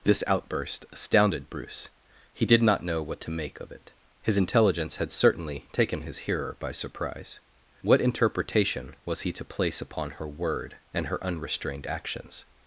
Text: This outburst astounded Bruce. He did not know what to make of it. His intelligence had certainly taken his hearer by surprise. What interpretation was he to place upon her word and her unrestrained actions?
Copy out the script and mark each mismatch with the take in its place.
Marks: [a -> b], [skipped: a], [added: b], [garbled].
This outburst astounded Bruce. He did not know what to make of it. His intelligence had certainly taken his hearer by surprise. What interpretation was he to place upon her word and her unrestrained actions?